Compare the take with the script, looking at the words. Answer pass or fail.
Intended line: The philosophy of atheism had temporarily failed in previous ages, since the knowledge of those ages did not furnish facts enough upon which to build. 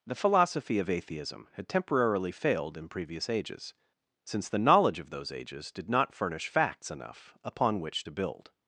pass